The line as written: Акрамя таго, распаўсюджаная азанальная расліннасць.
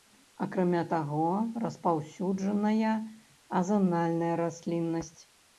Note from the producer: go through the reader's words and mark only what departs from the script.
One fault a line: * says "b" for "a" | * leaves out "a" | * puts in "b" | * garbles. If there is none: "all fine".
all fine